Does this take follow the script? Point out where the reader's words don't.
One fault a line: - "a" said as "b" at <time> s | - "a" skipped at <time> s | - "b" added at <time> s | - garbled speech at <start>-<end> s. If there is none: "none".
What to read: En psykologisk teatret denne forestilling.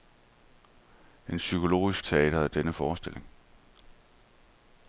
none